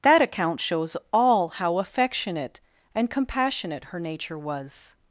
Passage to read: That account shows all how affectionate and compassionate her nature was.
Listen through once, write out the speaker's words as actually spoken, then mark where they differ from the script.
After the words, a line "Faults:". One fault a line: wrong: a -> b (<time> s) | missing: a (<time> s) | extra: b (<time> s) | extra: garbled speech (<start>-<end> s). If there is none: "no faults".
That account shows all how affectionate and compassionate her nature was.
Faults:
no faults